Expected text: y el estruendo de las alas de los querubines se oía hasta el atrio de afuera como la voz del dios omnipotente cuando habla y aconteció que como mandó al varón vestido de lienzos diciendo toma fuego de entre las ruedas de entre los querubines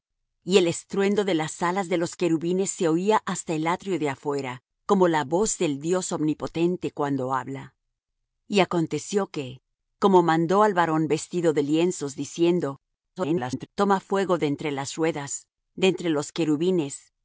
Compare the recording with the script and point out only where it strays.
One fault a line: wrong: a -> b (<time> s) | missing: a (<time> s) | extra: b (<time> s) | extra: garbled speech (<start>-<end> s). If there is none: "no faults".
extra: garbled speech (13.2-13.7 s)